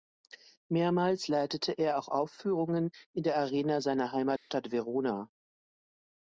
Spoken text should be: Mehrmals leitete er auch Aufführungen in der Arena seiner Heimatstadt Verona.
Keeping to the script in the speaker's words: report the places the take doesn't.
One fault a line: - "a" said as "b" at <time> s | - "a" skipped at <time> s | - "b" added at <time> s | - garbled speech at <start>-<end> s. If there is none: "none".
none